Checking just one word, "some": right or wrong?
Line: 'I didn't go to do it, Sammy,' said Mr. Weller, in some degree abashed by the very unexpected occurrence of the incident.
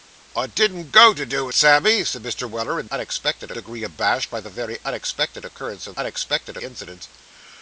wrong